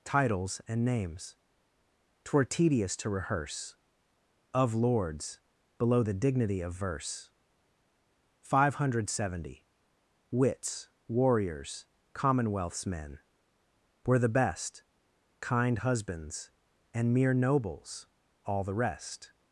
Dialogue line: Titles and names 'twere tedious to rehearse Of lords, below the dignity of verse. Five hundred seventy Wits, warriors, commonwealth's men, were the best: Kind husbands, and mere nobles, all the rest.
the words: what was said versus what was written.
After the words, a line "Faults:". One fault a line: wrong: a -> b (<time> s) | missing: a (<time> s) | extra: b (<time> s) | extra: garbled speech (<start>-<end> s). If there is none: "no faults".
Titles and names 'twere tedious to rehearse Of lords, below the dignity of verse. Five hundred seventy Wits, warriors, commonwealth's men, were the best: Kind husbands, and mere nobles, all the rest.
Faults:
no faults